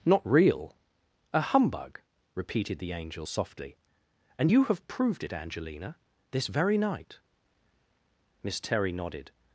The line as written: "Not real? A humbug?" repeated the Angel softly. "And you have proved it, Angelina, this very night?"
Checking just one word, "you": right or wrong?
right